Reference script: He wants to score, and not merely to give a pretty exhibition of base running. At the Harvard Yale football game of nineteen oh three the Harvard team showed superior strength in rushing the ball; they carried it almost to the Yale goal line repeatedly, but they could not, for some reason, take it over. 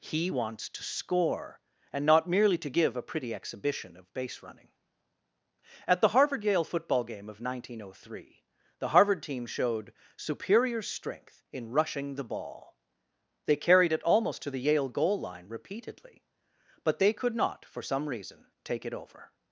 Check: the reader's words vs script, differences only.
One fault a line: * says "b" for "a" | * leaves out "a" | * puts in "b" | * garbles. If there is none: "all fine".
all fine